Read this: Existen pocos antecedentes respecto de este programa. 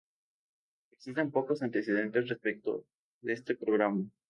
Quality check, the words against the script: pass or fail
pass